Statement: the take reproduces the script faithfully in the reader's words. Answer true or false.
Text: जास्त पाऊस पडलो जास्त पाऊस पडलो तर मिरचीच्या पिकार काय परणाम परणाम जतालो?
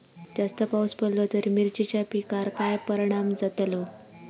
false